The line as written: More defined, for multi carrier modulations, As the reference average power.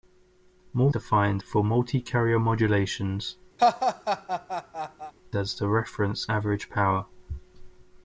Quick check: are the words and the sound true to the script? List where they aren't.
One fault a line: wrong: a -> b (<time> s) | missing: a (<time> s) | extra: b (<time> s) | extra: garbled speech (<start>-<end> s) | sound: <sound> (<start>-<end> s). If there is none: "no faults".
sound: laugh (3.6-5.1 s)